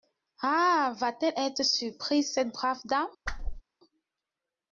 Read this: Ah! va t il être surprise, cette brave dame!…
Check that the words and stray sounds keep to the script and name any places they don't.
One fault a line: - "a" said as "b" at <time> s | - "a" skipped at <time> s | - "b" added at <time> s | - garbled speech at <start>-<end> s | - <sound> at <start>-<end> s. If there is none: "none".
- "il" said as "elle" at 1.3 s
- whoosh at 3.2-3.6 s